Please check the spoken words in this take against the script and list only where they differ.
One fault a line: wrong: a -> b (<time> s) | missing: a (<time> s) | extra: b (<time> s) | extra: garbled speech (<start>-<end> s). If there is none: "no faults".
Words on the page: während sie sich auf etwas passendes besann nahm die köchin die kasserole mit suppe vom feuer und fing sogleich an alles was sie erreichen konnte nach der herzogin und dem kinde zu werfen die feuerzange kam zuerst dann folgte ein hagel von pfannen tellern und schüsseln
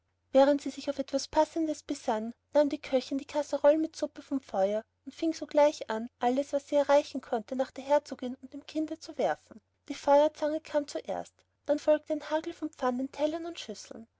no faults